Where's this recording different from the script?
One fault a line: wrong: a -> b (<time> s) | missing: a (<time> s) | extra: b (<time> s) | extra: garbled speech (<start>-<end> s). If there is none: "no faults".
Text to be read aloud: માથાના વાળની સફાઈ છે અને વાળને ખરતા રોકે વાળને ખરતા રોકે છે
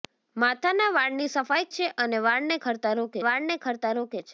no faults